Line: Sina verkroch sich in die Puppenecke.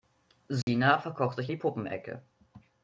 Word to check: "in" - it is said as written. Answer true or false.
false